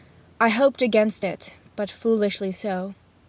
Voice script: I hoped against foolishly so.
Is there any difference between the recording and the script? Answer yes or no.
yes